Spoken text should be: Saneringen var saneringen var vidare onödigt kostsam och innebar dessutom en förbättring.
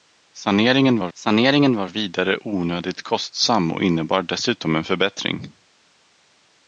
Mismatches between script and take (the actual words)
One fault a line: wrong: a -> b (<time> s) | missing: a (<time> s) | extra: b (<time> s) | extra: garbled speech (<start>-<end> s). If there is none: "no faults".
no faults